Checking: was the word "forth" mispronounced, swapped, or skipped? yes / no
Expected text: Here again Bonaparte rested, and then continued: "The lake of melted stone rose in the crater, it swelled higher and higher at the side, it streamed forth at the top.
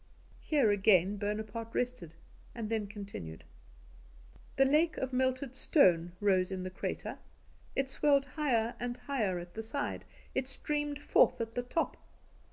no